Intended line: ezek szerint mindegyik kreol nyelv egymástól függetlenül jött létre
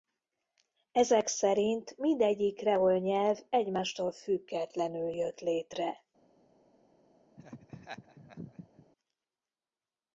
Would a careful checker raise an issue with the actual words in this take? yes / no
no